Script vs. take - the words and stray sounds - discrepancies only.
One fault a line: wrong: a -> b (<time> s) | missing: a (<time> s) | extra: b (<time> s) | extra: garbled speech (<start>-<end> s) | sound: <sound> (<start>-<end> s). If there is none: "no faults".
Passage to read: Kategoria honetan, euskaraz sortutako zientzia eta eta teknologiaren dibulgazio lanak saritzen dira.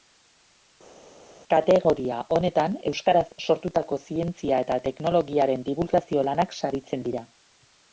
missing: eta (4.8 s)